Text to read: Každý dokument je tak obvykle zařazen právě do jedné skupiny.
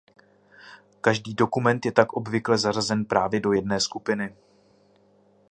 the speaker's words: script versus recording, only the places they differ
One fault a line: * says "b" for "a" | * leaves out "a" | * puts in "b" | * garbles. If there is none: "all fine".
all fine